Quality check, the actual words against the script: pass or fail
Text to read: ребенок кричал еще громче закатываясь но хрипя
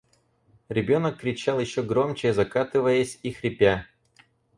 fail